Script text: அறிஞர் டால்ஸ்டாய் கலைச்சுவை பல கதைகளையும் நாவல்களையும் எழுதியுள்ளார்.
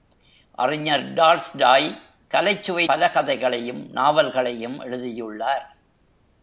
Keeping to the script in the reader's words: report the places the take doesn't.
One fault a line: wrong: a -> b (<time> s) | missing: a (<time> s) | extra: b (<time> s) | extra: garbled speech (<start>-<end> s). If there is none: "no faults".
no faults